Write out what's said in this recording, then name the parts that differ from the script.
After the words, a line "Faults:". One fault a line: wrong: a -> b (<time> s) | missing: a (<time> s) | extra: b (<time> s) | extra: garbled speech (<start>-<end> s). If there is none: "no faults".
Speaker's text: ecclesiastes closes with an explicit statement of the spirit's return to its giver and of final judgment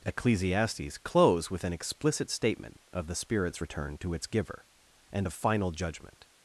ecclesiastes close with an explicit statement of the spirit's return to its giver and of final judgment
Faults:
wrong: closes -> close (1.0 s)